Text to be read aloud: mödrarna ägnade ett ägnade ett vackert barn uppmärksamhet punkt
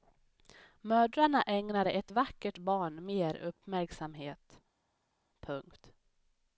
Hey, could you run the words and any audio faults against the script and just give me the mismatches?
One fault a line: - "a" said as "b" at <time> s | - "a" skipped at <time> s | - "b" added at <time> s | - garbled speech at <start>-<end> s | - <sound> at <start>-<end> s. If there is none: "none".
- "ägnade ett" skipped at 2.1 s
- "mer" added at 3.0 s